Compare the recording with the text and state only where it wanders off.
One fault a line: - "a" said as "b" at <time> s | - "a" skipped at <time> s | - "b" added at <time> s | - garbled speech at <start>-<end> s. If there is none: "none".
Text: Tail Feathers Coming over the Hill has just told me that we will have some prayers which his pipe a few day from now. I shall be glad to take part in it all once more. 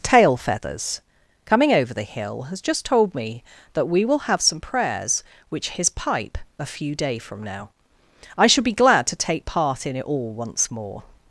none